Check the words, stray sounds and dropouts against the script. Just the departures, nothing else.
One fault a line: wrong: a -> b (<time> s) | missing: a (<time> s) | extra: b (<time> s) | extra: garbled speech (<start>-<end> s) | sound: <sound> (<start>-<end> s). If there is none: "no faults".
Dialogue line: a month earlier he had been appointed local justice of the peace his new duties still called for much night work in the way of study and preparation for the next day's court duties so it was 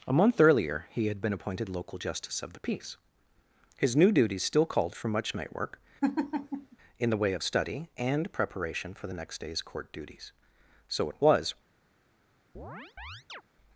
sound: laugh (6.0-6.8 s)
sound: chirp (12.6-13.4 s)